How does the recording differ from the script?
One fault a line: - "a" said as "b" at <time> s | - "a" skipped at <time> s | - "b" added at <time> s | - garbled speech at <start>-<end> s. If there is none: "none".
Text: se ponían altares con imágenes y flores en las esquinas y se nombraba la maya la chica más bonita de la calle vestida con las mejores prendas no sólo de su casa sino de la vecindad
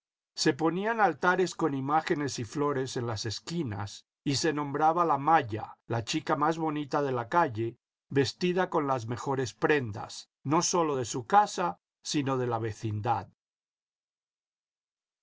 none